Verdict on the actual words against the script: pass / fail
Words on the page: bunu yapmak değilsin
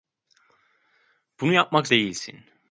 pass